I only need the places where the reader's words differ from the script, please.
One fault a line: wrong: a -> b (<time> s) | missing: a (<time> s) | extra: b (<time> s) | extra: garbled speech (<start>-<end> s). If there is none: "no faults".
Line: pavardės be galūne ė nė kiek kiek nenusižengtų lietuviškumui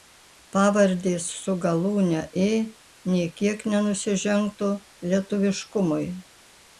wrong: be -> su (1.4 s)
missing: kiek (3.6 s)